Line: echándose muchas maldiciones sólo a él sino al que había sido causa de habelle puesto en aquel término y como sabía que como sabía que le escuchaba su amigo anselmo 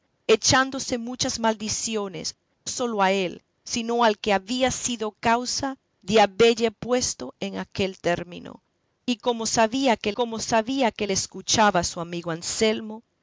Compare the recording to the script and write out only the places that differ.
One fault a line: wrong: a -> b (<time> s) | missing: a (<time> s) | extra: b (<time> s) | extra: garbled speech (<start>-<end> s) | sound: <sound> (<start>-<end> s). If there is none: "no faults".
no faults